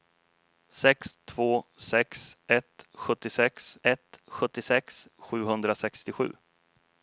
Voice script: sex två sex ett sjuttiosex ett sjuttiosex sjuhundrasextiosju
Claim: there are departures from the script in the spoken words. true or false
false